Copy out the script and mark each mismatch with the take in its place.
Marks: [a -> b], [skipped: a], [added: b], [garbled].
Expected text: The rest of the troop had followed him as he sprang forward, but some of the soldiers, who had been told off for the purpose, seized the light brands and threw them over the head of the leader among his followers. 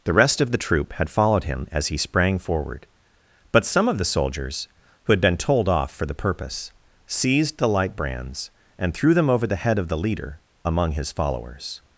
The rest of the troop had followed him as he sprang forward, but some of the soldiers, who had been told off for the purpose, seized the light brands and threw them over the head of the leader among his followers.